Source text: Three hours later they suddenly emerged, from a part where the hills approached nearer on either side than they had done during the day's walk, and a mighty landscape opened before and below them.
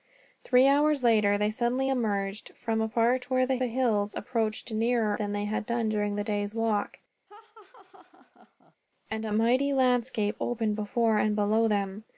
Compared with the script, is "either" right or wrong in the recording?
wrong